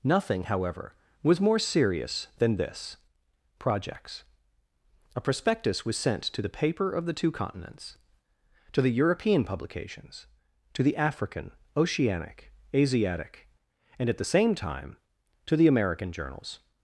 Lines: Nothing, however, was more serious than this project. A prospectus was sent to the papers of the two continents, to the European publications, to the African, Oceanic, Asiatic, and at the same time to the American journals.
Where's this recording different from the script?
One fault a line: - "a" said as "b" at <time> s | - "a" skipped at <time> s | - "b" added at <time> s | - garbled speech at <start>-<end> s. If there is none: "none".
- "project" said as "projects" at 3.6 s
- "papers" said as "paper" at 6.5 s